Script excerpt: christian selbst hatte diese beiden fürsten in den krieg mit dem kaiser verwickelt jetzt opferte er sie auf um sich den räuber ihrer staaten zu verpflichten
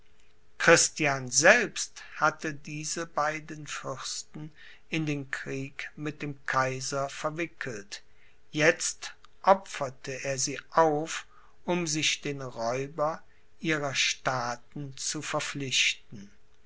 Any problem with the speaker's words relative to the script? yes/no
no